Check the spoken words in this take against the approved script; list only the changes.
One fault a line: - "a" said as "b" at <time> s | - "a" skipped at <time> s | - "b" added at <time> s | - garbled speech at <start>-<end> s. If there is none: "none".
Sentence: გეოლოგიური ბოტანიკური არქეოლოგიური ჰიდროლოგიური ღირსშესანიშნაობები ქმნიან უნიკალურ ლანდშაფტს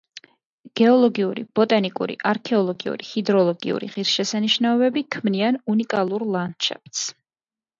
none